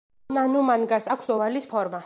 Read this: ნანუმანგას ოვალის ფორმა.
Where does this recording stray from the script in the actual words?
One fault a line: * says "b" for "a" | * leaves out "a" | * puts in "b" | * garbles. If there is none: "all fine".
* puts in "აქვს"